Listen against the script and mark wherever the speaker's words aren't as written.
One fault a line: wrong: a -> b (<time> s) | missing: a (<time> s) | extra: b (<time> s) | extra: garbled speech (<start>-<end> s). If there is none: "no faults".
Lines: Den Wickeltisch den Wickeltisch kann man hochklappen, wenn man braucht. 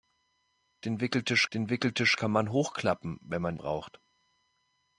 no faults